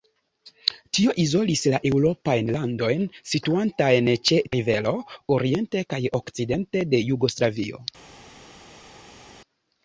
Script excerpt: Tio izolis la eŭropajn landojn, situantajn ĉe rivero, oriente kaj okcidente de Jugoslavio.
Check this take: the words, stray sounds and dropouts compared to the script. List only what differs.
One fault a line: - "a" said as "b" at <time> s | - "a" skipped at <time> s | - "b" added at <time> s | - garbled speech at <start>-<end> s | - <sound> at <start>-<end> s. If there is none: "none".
none